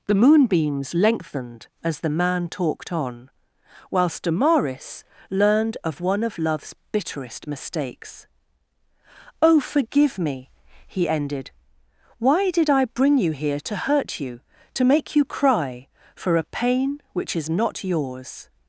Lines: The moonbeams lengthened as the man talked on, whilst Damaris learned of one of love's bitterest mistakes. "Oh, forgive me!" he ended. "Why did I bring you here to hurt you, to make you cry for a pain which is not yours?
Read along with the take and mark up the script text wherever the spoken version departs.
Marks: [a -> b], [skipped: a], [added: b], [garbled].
The moonbeams lengthened as the man talked on, whilst Damaris learned of one of love's bitterest mistakes. "Oh, forgive me!" he ended. "Why did I bring you here to hurt you, to make you cry for a pain which is not yours?